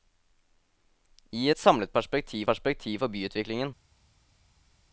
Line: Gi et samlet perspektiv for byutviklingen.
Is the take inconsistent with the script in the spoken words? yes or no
yes